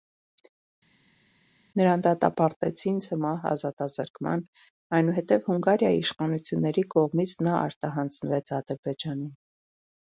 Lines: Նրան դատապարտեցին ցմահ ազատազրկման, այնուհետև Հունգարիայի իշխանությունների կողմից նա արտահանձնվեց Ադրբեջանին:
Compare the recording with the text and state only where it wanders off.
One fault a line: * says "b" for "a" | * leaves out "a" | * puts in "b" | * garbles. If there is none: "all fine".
all fine